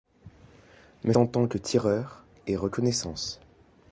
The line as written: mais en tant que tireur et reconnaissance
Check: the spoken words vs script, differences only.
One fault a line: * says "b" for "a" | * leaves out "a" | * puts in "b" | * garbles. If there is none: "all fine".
all fine